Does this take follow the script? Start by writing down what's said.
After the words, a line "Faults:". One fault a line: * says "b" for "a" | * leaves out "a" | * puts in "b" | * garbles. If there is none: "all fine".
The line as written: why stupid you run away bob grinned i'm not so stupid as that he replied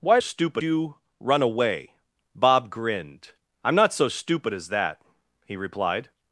why stupid you run away bob grinned i'm not so stupid as that he replied
Faults:
all fine